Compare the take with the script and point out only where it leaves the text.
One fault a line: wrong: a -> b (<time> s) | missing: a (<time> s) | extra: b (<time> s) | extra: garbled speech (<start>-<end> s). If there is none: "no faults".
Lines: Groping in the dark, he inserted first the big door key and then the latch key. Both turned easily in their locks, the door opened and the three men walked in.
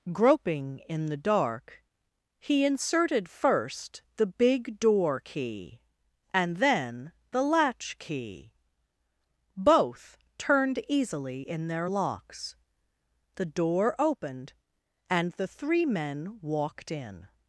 no faults